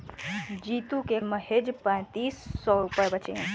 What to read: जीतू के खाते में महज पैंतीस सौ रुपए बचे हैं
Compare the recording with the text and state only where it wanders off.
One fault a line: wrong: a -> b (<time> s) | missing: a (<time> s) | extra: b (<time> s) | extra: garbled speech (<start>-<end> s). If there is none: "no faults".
missing: खाते में (1.2 s)